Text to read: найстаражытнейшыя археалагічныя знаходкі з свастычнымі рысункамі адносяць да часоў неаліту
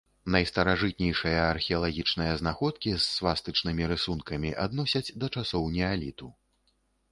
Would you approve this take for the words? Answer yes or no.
yes